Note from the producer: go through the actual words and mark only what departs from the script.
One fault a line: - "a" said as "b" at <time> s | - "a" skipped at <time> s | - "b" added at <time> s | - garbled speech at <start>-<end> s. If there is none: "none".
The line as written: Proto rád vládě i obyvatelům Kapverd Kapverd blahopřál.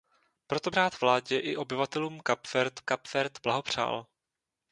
none